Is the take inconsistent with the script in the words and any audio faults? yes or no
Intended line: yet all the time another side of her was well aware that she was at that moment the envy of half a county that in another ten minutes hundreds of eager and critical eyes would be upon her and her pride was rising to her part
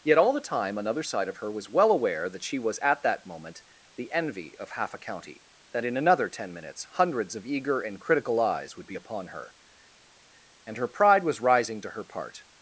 no